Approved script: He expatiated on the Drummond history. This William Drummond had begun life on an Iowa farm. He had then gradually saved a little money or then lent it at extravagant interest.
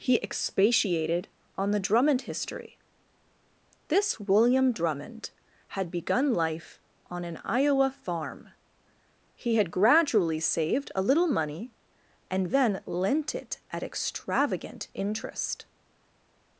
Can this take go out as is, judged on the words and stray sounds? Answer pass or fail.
fail